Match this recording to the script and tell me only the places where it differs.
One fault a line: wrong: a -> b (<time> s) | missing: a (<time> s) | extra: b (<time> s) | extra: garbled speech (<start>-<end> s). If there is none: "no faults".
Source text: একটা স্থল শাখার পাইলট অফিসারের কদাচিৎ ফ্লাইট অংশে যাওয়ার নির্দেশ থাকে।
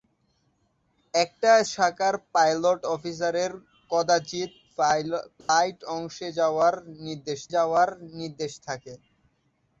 missing: স্থল (1.5 s)
extra: যাওয়ার নির্দেশ (7.5 s)